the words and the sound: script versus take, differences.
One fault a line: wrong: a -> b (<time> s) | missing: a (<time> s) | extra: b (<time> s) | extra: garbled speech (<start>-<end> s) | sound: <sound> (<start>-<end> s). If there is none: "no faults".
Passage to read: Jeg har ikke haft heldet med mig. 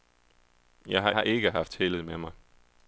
extra: har (1.1 s)